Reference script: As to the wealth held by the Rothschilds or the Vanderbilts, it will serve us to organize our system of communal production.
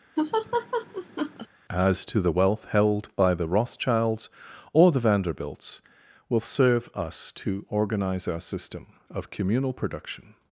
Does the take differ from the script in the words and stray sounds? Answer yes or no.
yes